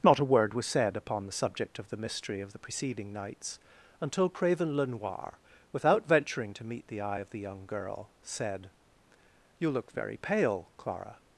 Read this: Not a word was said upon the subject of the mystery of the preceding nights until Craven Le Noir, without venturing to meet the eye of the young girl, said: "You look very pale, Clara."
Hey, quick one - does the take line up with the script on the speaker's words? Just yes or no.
yes